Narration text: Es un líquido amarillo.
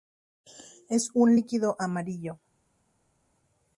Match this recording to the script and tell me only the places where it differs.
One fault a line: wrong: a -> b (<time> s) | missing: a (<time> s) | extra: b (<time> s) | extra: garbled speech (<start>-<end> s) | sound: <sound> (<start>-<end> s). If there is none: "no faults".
no faults